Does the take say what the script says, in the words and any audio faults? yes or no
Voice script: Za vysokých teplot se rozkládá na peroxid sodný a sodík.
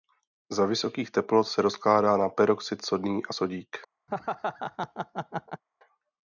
no